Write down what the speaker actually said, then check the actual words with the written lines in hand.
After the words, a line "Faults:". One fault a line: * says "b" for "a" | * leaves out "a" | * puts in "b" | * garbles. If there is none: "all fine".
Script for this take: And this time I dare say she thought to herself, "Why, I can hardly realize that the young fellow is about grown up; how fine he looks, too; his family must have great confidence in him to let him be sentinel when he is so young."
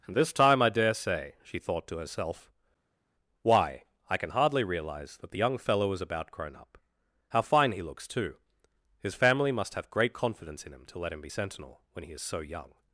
And this time I dare say she thought to herself, "Why, I can hardly realize that the young fellow is about grown up; how fine he looks, too; his family must have great confidence in him to let him be sentinel when he is so young."
Faults:
all fine